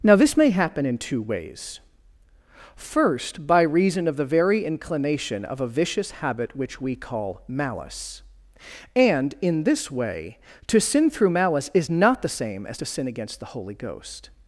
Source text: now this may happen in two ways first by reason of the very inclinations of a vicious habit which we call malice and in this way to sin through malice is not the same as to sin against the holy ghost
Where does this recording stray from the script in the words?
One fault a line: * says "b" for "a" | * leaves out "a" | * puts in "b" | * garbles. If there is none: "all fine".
* says "inclination" for "inclinations"